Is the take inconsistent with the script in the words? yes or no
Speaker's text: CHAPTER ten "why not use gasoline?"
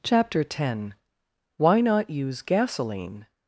no